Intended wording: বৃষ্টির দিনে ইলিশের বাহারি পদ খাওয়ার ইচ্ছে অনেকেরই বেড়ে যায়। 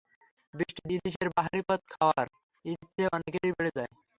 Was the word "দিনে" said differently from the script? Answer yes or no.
yes